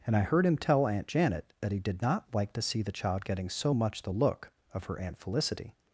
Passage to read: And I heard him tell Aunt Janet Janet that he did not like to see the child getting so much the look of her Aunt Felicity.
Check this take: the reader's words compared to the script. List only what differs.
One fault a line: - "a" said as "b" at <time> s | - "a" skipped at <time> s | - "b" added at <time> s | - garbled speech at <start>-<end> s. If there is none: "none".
- "Janet" skipped at 1.5 s